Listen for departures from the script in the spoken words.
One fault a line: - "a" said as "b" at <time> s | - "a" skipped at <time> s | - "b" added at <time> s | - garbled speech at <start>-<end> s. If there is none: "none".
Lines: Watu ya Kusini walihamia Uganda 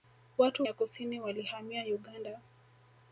none